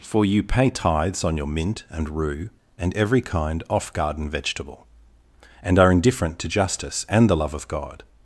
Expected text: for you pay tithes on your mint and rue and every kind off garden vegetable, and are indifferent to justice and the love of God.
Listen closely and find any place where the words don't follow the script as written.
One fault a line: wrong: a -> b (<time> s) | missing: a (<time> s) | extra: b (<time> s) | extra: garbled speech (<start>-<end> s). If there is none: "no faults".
no faults